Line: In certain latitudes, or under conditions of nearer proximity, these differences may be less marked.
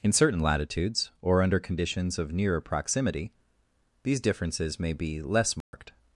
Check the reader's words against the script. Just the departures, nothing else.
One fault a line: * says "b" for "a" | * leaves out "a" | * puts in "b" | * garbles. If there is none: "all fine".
all fine